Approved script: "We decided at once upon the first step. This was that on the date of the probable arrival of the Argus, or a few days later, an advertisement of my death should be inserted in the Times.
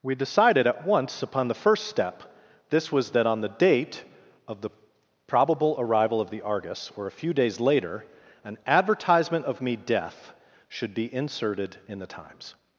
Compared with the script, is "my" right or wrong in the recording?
wrong